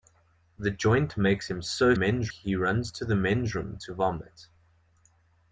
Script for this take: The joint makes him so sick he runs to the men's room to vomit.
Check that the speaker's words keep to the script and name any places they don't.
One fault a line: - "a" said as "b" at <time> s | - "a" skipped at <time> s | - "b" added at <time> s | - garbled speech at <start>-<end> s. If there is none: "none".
- "sick" said as "men's" at 1.9 s